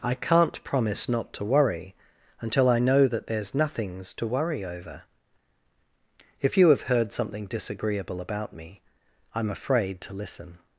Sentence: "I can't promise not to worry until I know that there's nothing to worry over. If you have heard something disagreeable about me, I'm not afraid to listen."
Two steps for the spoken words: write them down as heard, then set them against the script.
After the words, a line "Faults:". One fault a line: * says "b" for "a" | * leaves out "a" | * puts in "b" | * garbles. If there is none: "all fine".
"I can't promise not to worry until I know that there's nothings to worry over. If you have heard something disagreeable about me, I'm afraid to listen."
Faults:
* says "nothings" for "nothing"
* leaves out "not"